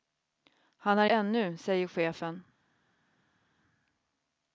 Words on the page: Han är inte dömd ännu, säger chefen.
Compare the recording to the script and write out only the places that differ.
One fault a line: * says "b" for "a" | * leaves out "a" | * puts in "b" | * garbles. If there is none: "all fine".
* leaves out "inte dömd"